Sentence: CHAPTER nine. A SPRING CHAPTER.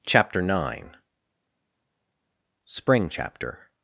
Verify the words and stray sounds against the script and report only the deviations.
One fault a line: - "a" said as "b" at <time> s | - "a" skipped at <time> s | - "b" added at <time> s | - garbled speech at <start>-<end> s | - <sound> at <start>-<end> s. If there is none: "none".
- "A" skipped at 1.0 s